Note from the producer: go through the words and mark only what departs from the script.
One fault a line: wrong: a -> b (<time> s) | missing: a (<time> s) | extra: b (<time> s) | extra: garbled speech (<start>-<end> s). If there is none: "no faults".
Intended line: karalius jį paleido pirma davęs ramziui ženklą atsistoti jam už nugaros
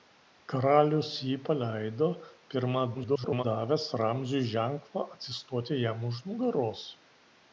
extra: garbled speech (2.9-3.4 s)